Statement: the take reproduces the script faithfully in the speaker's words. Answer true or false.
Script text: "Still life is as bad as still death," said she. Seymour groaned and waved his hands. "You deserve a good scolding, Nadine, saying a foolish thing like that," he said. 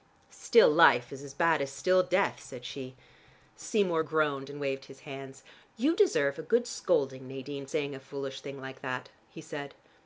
true